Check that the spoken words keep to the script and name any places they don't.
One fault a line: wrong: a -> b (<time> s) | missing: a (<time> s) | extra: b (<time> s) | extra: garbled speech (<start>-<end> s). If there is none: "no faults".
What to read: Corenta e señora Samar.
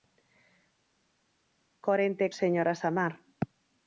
no faults